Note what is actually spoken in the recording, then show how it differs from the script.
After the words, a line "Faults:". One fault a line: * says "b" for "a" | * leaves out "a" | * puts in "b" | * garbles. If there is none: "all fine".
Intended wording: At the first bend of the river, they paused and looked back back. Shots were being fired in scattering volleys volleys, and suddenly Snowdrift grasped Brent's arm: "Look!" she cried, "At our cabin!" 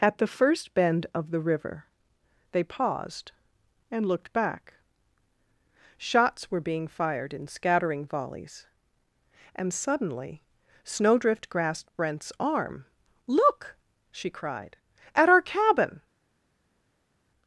At the first bend of the river, they paused and looked back. Shots were being fired in scattering volleys, and suddenly Snowdrift grasped Brent's arm: "Look!" she cried, "At our cabin!"
Faults:
* leaves out "back"
* leaves out "volleys"